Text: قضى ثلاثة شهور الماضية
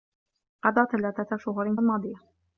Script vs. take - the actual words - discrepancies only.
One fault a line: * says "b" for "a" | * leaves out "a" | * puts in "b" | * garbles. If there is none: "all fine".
all fine